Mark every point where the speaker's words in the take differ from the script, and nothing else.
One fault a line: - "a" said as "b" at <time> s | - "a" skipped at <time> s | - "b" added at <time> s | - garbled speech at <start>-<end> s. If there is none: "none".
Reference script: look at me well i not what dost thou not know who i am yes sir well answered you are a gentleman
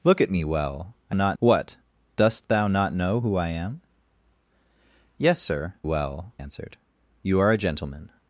none